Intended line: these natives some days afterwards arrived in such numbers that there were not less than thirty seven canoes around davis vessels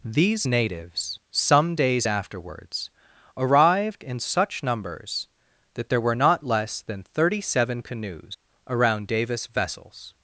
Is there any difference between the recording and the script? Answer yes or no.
no